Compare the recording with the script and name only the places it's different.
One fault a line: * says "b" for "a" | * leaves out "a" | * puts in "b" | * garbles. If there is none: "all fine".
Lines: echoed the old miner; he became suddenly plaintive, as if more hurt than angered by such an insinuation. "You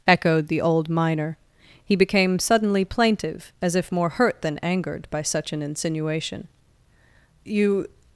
all fine